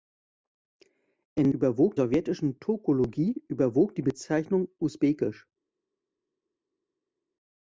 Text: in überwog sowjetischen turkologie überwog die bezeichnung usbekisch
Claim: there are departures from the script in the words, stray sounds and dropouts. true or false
false